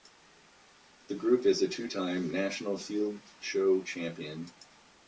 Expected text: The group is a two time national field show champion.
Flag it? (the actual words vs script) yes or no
no